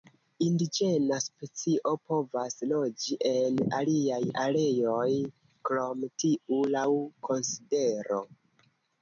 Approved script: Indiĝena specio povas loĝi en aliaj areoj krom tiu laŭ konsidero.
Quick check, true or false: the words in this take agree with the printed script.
true